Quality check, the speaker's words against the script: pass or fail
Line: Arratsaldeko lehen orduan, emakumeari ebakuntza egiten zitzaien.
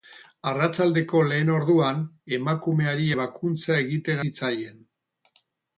pass